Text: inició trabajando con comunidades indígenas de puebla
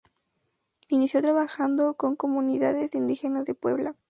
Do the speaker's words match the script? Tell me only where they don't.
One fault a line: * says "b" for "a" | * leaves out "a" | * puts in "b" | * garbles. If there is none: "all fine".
all fine